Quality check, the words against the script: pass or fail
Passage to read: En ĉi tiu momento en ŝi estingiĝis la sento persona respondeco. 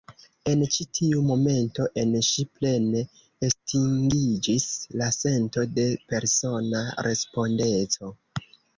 fail